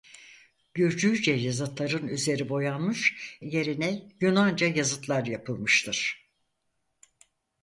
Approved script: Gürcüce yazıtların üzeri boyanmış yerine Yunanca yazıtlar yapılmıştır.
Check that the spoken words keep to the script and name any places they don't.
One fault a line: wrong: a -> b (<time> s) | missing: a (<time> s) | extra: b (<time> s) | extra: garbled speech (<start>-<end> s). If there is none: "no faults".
no faults